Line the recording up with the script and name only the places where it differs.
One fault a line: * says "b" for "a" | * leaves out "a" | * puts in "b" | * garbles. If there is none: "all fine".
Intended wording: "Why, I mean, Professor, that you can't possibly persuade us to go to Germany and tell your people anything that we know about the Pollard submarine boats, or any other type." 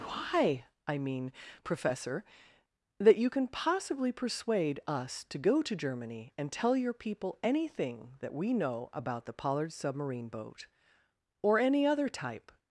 * says "can" for "can't"
* says "boat" for "boats"